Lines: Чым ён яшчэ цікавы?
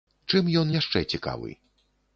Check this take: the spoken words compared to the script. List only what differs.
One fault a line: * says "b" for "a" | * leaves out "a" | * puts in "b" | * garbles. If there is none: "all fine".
all fine